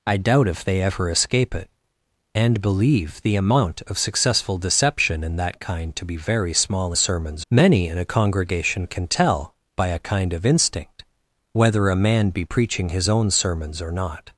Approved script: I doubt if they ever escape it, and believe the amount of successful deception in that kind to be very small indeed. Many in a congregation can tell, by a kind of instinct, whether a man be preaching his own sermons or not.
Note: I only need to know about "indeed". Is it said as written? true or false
false